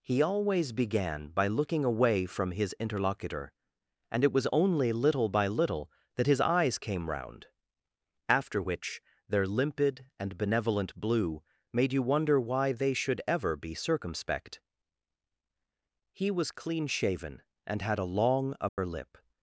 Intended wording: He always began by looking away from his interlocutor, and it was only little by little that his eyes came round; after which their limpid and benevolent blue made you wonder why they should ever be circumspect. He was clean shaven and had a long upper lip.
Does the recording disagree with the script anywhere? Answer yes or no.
no